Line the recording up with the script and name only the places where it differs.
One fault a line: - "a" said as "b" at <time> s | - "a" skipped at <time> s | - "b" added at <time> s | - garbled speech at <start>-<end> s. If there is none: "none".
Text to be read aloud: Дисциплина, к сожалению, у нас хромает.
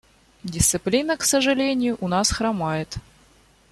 none